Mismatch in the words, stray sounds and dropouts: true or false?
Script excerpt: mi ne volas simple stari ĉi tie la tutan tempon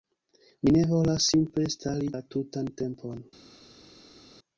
true